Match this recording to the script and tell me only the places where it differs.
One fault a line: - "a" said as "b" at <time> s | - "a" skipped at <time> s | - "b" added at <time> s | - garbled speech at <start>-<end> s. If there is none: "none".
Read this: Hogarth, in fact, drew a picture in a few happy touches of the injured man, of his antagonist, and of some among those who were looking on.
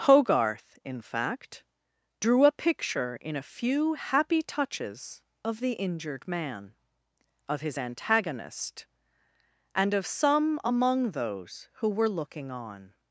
none